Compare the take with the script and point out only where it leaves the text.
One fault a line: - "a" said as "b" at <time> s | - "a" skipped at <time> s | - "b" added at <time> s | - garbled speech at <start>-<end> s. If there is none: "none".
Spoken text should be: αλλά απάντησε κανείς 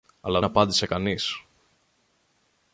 none